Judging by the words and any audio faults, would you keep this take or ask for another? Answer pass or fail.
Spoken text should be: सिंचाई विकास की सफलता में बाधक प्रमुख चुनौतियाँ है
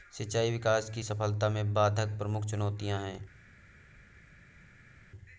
pass